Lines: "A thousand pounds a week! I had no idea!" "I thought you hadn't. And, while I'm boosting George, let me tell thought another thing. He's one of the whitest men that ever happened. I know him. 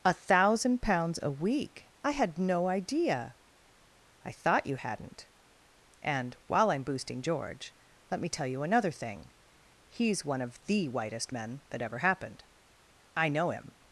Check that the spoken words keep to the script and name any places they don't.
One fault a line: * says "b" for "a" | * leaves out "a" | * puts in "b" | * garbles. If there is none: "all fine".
* says "you" for "thought"